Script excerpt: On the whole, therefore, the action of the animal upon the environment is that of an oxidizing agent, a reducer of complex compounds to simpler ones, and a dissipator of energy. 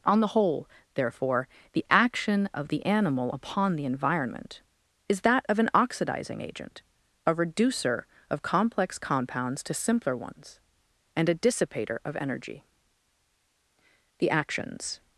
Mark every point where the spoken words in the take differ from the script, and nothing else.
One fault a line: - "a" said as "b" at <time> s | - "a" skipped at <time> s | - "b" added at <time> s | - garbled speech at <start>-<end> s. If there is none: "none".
- "The actions" added at 14.2 s